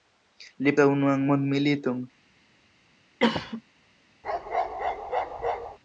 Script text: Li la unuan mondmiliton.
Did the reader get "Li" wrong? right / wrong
right